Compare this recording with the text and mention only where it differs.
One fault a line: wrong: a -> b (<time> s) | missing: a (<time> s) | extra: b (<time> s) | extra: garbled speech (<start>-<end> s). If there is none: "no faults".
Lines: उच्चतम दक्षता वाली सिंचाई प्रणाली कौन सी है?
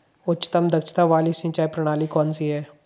no faults